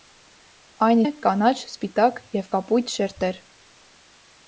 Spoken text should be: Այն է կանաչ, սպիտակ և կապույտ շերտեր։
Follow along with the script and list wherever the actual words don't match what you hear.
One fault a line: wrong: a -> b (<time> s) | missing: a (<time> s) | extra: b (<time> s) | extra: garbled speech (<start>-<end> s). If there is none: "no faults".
no faults